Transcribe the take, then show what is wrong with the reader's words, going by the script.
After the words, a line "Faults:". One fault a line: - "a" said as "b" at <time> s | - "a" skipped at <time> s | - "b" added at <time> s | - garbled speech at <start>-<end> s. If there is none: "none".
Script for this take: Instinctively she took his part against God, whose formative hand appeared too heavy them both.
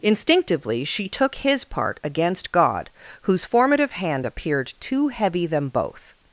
Instinctively she took his part against God, whose formative hand appeared too heavy them both.
Faults:
none